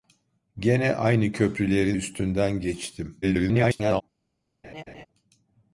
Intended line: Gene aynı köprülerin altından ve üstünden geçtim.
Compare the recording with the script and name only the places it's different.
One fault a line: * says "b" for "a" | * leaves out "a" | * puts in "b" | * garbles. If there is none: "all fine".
* leaves out "altından ve"
* garbles